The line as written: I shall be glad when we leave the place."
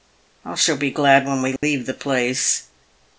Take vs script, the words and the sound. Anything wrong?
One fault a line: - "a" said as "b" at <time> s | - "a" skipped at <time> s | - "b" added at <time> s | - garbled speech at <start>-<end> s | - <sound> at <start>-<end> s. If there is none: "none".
- dropout at 1.6-1.6 s